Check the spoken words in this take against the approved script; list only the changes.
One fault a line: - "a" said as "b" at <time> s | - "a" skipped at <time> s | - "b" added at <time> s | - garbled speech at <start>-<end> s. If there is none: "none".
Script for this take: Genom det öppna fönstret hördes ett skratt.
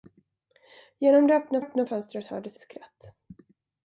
- "öppna" added at 1.6 s
- "ett" skipped at 2.6 s